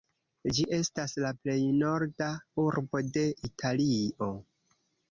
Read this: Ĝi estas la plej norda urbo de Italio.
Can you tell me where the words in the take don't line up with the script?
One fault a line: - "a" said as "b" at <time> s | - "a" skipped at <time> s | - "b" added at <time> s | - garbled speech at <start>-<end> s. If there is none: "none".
none